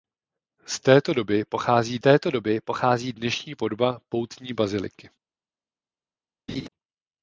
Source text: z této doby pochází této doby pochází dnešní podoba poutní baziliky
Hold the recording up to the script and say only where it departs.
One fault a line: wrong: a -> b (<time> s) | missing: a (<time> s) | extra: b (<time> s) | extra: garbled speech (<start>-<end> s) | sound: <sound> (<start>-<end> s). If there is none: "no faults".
sound: laugh (6.5-6.7 s)